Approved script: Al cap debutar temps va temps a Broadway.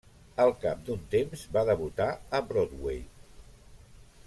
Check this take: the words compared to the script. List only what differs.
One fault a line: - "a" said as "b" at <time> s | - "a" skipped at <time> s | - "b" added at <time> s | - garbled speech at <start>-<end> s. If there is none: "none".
- "debutar" said as "d'un" at 0.9 s
- "temps" said as "debutar" at 1.7 s